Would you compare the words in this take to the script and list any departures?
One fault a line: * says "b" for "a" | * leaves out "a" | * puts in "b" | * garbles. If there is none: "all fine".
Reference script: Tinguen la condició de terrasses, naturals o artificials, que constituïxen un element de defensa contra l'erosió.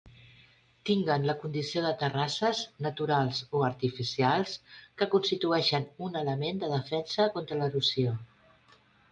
all fine